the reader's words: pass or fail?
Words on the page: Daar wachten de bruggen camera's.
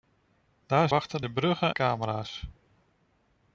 pass